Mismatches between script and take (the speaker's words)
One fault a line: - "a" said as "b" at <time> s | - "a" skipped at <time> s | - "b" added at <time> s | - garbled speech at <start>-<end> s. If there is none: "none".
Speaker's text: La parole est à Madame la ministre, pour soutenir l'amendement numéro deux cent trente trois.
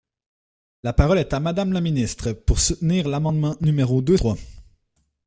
- "cent trente" skipped at 4.2 s